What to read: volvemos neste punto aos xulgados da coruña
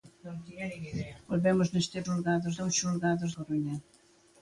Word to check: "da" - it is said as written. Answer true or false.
false